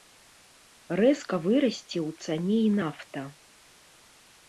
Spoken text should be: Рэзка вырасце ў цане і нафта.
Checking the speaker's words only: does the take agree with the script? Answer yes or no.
yes